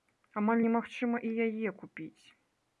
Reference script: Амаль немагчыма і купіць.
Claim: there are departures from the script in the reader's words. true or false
true